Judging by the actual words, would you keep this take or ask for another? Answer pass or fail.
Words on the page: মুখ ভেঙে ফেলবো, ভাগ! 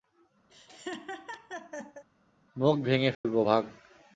pass